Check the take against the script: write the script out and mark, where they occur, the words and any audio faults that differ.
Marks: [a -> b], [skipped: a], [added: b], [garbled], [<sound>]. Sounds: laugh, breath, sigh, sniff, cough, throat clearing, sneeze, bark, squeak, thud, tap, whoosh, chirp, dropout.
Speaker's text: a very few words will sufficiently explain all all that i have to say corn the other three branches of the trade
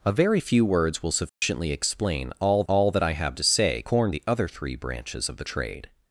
a very few words will sufficiently [dropout] explain all all that i have to say corn the other three branches of the trade